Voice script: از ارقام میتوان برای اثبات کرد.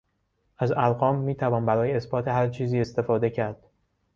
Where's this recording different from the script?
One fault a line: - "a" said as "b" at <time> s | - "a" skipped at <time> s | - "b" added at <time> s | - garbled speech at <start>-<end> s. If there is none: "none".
- "هر چیزی استفاده" added at 2.3 s